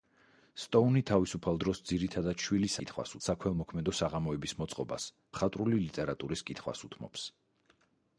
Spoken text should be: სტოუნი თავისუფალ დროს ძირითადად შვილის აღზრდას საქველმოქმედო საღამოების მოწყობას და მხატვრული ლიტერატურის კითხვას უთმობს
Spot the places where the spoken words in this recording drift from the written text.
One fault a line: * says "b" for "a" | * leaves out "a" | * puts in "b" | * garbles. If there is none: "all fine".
* says "კითხვას" for "აღზრდას"
* leaves out "და"